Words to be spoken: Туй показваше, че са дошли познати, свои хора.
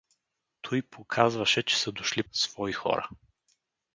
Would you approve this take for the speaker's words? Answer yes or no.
no